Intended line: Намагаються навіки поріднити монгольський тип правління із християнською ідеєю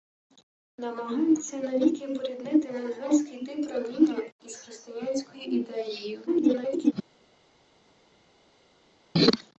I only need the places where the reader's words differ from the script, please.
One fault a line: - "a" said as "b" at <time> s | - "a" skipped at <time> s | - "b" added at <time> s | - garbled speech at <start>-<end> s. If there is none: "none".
- garbled speech at 6.3-6.9 s